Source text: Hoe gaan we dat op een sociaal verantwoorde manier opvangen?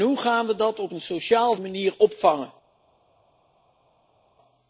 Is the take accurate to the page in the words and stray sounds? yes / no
no